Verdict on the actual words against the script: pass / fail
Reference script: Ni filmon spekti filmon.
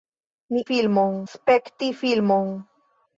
pass